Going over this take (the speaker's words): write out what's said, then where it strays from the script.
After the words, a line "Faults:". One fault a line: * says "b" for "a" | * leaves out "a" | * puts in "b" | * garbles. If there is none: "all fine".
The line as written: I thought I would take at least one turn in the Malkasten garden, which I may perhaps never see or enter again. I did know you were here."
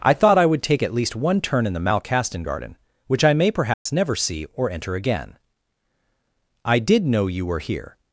I thought I would take at least one turn in the Malkasten garden, which I may perhaps never see or enter again. I did know you were here."
Faults:
all fine